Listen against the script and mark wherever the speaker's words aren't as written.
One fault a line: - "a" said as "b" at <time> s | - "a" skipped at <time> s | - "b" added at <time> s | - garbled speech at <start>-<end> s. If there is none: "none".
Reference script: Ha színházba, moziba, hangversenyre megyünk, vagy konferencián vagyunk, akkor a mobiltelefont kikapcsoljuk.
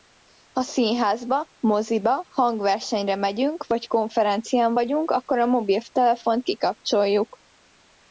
none